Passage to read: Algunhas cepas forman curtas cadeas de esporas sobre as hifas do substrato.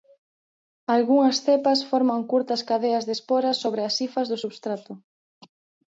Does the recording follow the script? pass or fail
pass